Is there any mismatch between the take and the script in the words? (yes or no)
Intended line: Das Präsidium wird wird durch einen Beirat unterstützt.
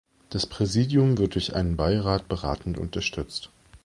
yes